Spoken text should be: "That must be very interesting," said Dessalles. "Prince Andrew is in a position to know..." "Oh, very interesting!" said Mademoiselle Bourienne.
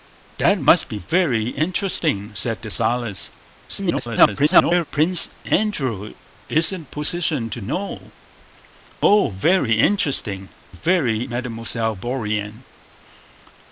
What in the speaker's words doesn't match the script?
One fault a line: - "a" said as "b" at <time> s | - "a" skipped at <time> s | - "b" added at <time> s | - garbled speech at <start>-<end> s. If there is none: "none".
- garbled speech at 3.7-4.8 s
- "said" said as "very" at 10.7 s